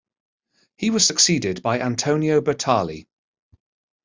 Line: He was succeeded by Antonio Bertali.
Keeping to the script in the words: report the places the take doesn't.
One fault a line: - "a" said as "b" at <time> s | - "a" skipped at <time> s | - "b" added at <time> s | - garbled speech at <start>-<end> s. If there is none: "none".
none